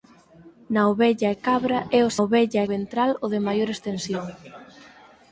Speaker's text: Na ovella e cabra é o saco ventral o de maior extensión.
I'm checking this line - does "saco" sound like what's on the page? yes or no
no